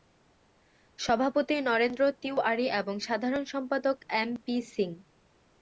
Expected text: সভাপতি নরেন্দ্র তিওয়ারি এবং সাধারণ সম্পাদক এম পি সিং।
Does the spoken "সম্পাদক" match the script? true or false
true